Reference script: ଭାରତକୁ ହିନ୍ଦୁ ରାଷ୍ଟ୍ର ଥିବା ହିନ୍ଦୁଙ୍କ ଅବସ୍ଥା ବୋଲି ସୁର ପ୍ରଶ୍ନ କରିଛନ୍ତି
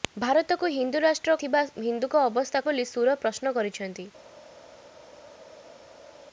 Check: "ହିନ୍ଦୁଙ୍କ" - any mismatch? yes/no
no